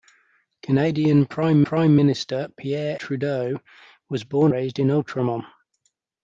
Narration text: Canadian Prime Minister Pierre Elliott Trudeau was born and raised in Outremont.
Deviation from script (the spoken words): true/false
true